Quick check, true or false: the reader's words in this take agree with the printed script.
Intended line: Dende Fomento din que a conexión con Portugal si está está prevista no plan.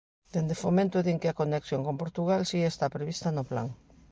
false